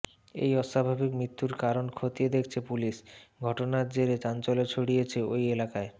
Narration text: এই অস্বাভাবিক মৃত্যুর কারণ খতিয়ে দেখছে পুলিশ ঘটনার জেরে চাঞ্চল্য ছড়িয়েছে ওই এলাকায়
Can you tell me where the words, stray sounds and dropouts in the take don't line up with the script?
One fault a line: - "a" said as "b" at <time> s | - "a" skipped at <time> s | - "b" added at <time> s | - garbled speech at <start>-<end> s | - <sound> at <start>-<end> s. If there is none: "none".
none